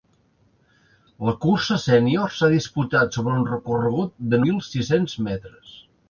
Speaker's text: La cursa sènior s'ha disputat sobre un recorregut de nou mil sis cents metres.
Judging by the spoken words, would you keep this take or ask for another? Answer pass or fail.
fail